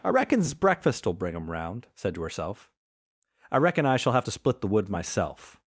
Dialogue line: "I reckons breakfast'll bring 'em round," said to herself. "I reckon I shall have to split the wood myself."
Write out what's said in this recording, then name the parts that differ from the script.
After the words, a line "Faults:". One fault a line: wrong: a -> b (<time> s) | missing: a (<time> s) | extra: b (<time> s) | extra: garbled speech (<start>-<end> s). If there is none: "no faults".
"I reckons breakfast'll bring 'em round," said to herself. "I reckon I shall have to split the wood myself."
Faults:
no faults